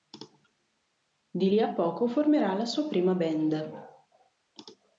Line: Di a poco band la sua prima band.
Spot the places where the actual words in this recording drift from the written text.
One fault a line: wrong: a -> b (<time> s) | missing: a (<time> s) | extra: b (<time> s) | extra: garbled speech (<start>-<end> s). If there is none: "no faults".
extra: lì (1.5 s)
wrong: band -> formerà (2.1 s)